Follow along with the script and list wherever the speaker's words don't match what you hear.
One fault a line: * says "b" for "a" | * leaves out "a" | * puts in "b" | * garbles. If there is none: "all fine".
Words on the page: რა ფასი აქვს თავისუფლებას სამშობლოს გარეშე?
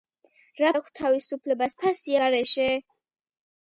* leaves out "ფასი"
* says "ფასი" for "სამშობლოს"